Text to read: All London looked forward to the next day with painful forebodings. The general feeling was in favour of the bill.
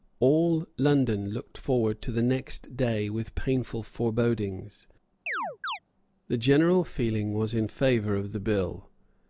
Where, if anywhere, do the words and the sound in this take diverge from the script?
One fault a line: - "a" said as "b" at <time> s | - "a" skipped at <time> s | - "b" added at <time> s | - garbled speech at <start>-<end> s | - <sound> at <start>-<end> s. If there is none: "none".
- chirp at 5.3-5.8 s